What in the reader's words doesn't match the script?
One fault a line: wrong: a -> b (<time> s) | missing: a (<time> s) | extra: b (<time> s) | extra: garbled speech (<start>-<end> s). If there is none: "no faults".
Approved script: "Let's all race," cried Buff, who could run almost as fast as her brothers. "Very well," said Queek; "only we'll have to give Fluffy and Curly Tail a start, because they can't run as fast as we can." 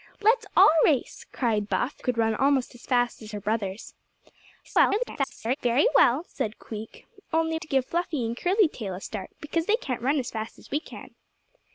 missing: who (2.0 s)
extra: garbled speech (4.6-5.6 s)
missing: we'll have (7.6 s)